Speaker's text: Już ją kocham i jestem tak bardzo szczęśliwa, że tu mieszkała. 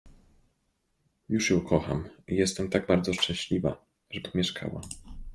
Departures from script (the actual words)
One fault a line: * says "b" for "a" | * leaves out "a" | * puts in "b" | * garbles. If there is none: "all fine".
all fine